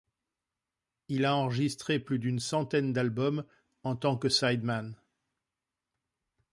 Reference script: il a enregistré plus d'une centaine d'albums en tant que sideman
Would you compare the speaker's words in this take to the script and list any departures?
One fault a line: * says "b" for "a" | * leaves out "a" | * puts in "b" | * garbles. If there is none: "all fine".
all fine